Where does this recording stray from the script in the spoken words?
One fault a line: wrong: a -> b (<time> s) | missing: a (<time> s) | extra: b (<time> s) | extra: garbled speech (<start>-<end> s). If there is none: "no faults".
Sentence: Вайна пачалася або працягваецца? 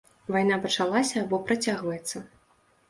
no faults